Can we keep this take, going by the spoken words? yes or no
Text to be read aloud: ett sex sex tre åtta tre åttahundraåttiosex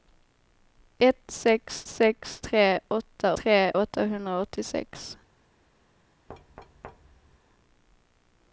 yes